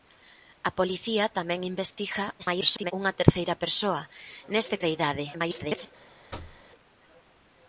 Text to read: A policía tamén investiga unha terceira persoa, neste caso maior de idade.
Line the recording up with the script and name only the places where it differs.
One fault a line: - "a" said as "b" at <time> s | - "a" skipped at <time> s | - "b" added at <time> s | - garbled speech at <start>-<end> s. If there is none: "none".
- garbled speech at 2.4-2.9 s
- "caso maior" skipped at 4.8 s
- garbled speech at 5.3-5.9 s